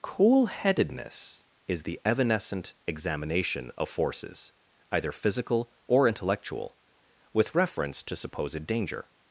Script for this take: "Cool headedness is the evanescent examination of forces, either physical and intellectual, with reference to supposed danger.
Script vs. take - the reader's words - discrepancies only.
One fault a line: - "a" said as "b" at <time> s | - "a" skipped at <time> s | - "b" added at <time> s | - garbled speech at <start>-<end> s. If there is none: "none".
- "and" said as "or" at 5.9 s